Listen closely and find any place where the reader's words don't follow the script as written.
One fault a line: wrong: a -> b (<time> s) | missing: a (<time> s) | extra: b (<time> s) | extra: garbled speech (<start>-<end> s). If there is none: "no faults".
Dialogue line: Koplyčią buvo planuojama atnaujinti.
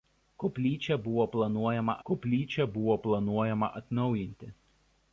extra: koplyčią buvo planuojama (2.1 s)